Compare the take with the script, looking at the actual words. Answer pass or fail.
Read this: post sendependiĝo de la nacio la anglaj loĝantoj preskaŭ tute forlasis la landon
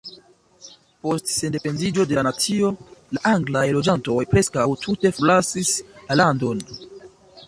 pass